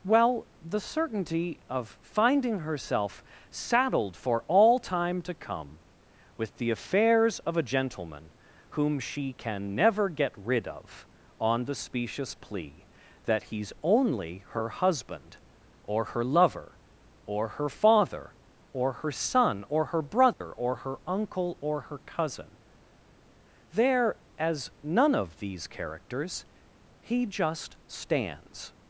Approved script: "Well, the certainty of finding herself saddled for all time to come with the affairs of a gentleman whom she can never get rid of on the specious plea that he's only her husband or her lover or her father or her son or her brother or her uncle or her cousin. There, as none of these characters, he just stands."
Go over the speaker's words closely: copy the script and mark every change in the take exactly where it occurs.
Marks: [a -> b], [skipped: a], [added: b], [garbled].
"Well, the certainty of finding herself saddled for all time to come with the affairs of a gentleman whom she can never get rid of on the specious plea that he's only her husband or her lover or her father or her son or her brother or her uncle or her cousin. There, as none of these characters, he just stands."